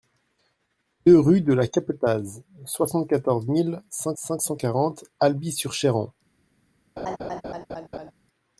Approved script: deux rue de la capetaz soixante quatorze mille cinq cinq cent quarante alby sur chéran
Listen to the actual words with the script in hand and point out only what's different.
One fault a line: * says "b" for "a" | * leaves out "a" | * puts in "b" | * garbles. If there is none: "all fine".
all fine